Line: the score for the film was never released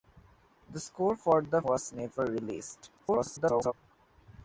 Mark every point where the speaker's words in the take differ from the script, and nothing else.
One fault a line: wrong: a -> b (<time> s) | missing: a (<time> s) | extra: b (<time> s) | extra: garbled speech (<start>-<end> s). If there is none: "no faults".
missing: film (1.6 s)
extra: garbled speech (3.0-3.7 s)